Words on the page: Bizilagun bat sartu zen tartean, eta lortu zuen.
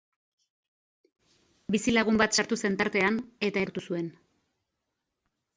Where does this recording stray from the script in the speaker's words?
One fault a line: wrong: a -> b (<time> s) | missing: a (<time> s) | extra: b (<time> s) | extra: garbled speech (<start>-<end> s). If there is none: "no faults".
no faults